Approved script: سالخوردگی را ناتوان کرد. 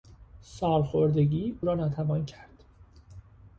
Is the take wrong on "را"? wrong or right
right